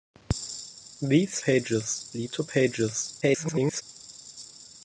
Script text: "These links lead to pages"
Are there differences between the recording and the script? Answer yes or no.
yes